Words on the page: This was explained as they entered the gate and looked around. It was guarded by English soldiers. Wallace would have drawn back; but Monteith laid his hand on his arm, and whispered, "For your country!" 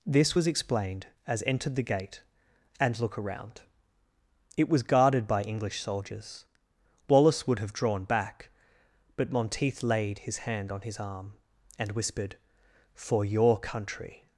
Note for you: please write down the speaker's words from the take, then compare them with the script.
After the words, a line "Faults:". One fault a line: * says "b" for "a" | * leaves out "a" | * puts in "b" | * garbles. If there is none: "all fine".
This was explained as entered the gate and look around. It was guarded by English soldiers. Wallace would have drawn back; but Monteith laid his hand on his arm, and whispered, "For your country!"
Faults:
* leaves out "they"
* says "look" for "looked"